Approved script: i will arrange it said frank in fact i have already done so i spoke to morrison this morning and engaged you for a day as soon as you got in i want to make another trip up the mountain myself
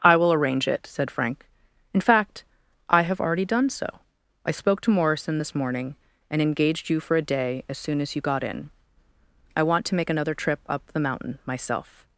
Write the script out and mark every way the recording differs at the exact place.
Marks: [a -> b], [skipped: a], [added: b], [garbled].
i will arrange it said frank in fact i have already done so i spoke to morrison this morning and engaged you for a day as soon as you got in i want to make another trip up the mountain myself